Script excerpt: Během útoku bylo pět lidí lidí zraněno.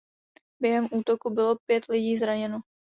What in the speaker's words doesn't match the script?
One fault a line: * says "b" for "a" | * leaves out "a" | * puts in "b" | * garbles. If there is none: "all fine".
* leaves out "lidí"